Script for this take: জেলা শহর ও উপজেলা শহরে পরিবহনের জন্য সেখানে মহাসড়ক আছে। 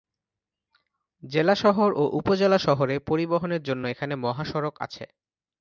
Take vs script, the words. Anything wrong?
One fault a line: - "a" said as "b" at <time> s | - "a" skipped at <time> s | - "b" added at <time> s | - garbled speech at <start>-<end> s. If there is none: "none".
- "সেখানে" said as "এখানে" at 3.9 s